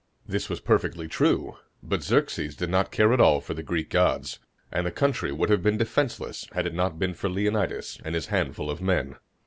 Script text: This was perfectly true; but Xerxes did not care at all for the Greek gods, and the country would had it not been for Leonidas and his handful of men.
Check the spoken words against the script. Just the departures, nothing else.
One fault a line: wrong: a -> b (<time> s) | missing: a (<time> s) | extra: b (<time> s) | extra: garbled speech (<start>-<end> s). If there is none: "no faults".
extra: have been defenseless (5.5 s)